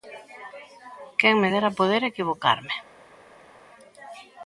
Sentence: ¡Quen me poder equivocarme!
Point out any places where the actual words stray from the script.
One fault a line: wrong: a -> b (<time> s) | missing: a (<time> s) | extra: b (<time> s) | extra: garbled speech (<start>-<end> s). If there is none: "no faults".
extra: dera (1.5 s)